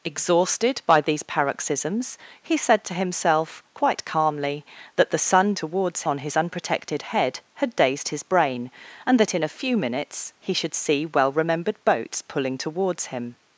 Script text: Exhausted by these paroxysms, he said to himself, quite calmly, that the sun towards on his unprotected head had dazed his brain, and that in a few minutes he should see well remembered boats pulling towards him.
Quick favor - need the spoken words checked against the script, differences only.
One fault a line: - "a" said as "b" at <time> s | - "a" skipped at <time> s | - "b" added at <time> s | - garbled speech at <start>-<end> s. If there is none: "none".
none